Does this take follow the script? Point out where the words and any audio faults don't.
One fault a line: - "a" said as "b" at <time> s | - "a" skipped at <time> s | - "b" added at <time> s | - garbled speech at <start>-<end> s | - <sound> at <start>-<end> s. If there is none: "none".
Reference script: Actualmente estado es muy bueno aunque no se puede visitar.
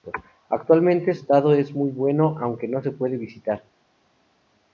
none